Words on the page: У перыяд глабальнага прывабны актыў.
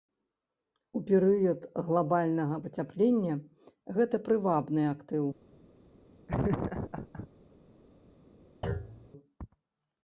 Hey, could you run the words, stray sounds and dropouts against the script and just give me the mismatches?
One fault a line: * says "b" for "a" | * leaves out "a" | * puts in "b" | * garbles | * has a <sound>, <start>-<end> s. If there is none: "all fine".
* puts in "пацяплення гэта"
* has a laugh, 6.3-7.3 s
* has a thud, 8.6-9.1 s